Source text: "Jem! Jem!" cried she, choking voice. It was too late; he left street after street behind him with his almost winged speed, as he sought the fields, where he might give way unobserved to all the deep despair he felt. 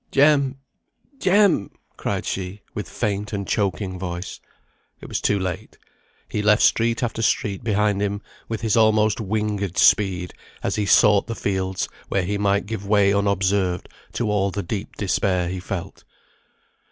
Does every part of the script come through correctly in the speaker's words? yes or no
no